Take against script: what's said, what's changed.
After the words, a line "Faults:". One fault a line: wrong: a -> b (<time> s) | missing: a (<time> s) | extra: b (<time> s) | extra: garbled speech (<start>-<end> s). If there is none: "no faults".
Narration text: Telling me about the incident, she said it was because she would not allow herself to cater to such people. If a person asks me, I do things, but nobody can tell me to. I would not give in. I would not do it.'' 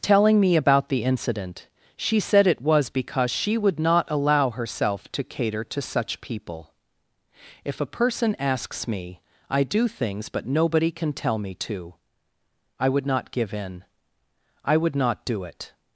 Telling me about the incident, she said it was because she would not allow herself to cater to such people. If a person asks me, I do things, but nobody can tell me to. I would not give in. I would not do it.''
Faults:
no faults